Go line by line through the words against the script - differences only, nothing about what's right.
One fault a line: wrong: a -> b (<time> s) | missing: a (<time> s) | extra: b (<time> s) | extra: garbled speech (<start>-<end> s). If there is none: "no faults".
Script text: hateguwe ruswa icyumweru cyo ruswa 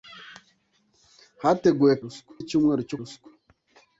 no faults